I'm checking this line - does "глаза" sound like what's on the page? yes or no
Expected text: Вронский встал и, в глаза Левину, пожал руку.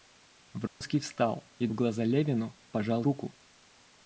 yes